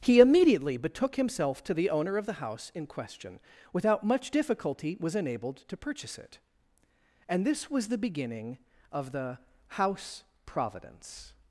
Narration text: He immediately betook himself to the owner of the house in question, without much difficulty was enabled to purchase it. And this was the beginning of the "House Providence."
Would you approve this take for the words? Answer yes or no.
yes